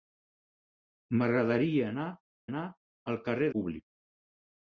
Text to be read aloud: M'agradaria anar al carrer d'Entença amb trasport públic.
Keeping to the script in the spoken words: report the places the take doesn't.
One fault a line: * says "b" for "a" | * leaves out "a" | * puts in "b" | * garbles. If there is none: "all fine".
* puts in "anar"
* leaves out "d'Entença amb trasport"